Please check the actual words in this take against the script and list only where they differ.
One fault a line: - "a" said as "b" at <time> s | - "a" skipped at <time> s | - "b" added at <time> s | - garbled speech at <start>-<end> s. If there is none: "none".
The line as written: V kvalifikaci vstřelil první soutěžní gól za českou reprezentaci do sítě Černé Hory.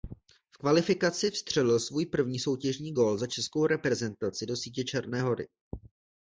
- "svůj" added at 1.8 s